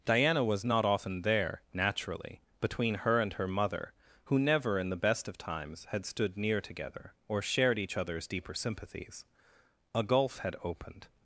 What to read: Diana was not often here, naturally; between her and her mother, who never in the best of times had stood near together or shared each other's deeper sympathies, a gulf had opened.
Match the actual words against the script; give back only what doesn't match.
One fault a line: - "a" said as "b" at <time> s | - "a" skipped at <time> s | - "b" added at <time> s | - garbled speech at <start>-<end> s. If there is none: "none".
- "here" said as "there" at 1.2 s